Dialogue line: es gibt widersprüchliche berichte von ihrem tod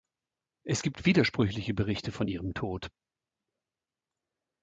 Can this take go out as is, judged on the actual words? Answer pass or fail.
pass